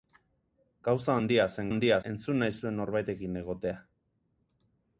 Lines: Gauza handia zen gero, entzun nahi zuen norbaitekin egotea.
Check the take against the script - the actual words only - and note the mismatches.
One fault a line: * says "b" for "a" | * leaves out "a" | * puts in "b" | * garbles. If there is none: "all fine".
* says "handia" for "gero"